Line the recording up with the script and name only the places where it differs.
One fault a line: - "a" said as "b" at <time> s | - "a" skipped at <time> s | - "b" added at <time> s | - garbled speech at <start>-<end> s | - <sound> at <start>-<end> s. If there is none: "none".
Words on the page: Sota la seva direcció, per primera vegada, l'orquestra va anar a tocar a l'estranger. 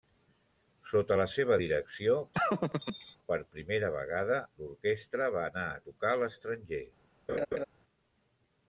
- laugh at 2.3-3.2 s
- laugh at 7.3-7.6 s